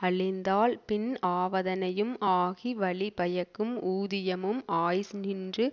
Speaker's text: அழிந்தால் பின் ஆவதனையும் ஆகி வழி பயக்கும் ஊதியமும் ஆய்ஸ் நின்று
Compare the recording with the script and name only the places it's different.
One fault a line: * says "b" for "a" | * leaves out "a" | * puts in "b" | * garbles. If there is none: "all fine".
all fine